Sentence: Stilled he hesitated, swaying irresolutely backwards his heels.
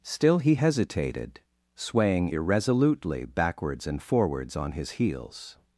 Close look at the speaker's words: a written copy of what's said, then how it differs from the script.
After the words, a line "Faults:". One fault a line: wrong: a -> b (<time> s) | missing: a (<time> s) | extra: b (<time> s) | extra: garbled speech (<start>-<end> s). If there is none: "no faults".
Still he hesitated, swaying irresolutely backwards and forwards on his heels.
Faults:
wrong: Stilled -> Still (0.0 s)
extra: and forwards on (3.9 s)